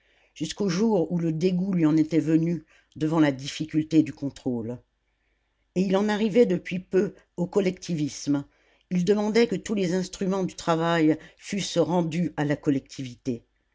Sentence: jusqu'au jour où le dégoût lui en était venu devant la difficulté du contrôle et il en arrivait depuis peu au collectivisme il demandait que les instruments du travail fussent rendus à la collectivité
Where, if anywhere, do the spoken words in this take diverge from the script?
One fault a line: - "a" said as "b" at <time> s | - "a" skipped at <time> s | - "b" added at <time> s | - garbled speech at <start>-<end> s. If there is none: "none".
- "tous" added at 9.6 s